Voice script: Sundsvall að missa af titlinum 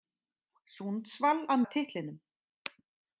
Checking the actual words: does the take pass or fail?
fail